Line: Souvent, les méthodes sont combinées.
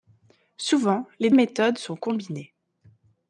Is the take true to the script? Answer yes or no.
yes